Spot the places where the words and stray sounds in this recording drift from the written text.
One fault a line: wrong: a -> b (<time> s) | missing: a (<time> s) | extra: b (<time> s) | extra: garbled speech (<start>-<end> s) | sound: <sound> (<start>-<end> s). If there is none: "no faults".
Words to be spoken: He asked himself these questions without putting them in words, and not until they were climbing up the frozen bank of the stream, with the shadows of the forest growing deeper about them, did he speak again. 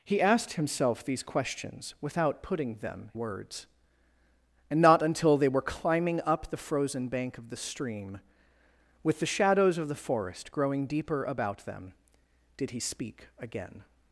missing: in (3.1 s)